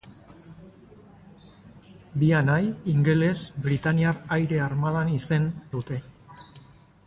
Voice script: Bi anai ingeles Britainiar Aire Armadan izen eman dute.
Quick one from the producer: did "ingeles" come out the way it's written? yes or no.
yes